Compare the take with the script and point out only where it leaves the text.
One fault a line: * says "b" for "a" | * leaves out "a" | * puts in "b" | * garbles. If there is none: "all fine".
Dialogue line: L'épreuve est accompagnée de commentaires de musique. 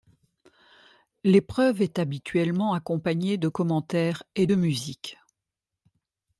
* puts in "habituellement"
* puts in "et"